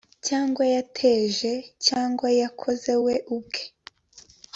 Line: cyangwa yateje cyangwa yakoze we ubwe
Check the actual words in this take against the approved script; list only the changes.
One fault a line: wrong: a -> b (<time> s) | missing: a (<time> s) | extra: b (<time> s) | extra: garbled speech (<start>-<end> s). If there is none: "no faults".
no faults